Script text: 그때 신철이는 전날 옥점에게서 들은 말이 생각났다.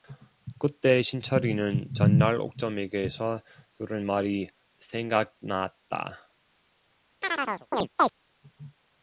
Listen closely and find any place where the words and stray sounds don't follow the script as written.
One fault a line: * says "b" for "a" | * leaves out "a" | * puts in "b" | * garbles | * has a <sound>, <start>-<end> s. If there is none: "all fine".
* has a chirp, 7.2-8.1 s